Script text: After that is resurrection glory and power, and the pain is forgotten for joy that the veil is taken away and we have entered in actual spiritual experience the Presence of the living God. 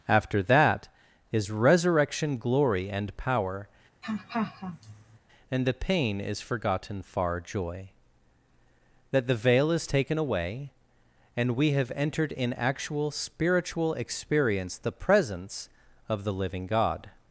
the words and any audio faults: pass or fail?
fail